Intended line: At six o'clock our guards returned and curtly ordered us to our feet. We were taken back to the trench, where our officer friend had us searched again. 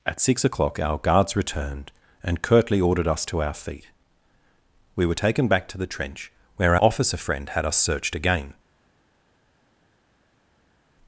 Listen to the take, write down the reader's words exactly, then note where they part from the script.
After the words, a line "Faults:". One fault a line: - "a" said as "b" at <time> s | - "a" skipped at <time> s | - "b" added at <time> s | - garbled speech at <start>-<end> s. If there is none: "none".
At six o'clock our guards returned and curtly ordered us to our feet. We were taken back to the trench, where officer friend had us searched again.
Faults:
- "our" skipped at 6.8 s